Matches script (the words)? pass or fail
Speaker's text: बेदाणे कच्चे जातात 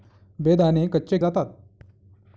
pass